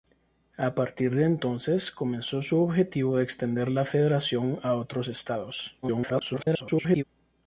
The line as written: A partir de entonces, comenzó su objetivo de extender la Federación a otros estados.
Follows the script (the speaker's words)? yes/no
no